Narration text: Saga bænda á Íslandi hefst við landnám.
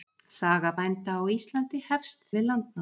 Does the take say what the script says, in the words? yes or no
yes